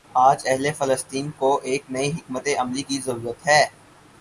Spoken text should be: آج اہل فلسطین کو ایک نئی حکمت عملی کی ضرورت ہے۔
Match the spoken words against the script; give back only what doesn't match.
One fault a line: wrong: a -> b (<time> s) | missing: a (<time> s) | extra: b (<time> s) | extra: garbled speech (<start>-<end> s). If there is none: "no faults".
no faults